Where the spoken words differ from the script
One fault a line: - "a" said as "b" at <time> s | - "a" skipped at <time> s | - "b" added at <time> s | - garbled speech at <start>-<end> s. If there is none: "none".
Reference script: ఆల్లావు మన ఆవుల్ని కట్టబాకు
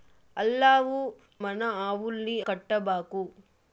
none